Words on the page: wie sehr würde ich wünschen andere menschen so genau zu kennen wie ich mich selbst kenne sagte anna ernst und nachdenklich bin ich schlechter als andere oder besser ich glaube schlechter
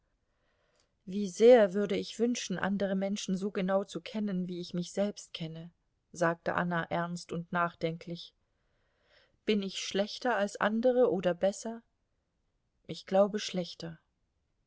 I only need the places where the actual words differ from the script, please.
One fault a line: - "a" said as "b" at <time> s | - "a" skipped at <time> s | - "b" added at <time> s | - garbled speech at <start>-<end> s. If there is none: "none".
none